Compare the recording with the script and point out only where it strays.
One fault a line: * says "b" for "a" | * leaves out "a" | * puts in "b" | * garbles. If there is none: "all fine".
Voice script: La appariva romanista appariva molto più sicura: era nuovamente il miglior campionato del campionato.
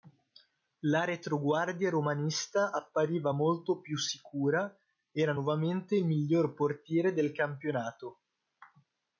* says "retroguardia" for "appariva"
* says "portiere" for "campionato"